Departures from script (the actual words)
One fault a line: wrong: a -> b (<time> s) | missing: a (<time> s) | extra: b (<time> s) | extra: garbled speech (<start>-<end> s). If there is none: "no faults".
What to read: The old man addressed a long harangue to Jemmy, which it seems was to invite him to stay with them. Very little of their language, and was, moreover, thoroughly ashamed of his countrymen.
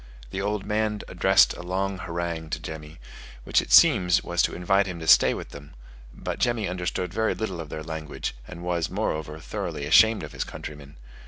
extra: But Jemmy understood (6.1 s)